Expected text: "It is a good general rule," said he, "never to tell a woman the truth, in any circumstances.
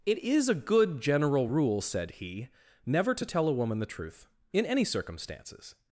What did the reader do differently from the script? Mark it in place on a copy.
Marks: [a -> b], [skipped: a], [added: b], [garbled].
"It is a good general rule," said he, "never to tell a woman the truth, in any circumstances.